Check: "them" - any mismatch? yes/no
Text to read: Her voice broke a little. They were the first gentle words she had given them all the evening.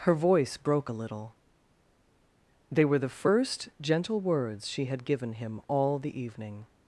yes